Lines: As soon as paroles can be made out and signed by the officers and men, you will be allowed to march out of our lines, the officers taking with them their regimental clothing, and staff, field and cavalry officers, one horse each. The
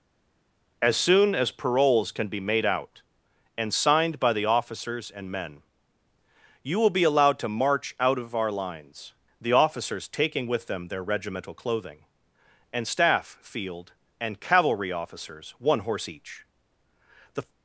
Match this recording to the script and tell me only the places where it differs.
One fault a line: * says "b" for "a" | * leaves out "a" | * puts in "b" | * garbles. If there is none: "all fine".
all fine